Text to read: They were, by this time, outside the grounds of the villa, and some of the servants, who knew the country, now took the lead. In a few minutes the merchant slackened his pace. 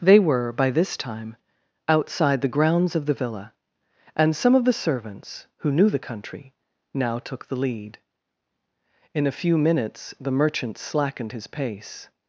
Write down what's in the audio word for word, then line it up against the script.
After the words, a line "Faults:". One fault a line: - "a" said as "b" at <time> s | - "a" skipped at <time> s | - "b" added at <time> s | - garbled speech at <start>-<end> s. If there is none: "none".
They were, by this time, outside the grounds of the villa, and some of the servants, who knew the country, now took the lead. In a few minutes the merchant slackened his pace.
Faults:
none